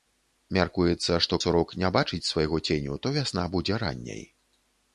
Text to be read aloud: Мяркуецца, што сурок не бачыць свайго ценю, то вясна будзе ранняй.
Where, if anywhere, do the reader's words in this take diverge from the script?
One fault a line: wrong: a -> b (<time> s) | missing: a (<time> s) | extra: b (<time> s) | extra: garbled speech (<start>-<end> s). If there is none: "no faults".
no faults